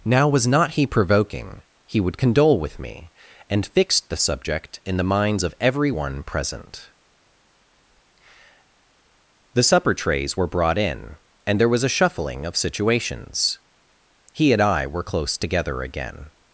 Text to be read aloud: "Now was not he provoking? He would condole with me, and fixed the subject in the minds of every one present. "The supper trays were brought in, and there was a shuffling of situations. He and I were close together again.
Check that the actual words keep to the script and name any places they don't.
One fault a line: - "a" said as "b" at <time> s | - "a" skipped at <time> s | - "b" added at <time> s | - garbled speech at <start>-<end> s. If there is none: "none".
none